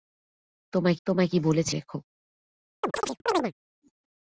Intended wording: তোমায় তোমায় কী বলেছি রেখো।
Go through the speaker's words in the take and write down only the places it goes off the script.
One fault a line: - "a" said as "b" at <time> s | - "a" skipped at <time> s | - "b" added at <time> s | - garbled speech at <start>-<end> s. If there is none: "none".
none